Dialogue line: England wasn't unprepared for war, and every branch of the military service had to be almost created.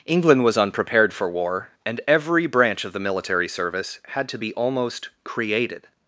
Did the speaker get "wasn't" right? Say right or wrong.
wrong